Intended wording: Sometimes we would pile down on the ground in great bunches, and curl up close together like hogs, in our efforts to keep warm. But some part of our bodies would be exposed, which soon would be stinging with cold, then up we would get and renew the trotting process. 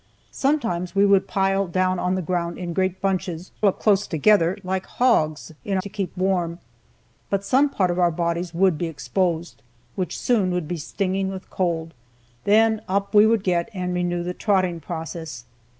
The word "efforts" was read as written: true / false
false